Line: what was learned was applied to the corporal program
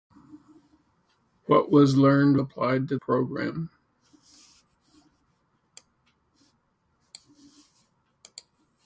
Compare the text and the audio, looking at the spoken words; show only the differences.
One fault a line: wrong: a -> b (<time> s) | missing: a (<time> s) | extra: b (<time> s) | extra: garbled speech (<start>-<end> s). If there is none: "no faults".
missing: was (2.4 s)
missing: the corporal (3.0 s)